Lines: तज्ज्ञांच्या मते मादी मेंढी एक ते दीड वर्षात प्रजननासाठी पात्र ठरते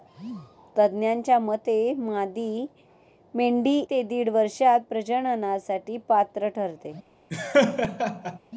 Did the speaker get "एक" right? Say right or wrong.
wrong